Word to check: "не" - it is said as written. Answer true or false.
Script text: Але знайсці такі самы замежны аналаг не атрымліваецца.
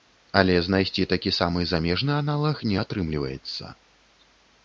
true